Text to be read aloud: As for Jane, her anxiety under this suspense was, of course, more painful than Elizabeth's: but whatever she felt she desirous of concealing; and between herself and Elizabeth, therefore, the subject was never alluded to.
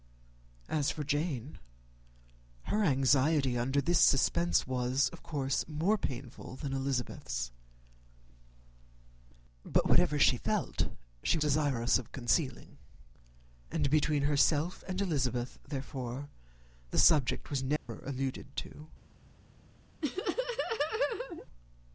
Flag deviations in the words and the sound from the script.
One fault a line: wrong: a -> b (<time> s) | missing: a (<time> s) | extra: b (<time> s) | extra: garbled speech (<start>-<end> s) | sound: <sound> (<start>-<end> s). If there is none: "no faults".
sound: dropout (17.8-17.9 s)
sound: laugh (20.0-21.5 s)